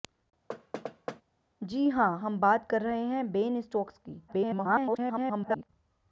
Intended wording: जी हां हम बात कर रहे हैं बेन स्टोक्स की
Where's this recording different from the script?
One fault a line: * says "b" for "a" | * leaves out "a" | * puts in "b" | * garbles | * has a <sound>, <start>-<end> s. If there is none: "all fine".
* has a thud, 0.5-1.2 s
* garbles